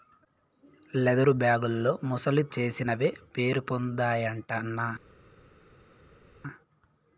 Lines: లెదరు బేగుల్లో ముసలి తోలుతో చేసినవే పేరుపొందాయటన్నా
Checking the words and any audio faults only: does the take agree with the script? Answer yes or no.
no